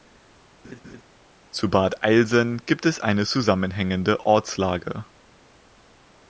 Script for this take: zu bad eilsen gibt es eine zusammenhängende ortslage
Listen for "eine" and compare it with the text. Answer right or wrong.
right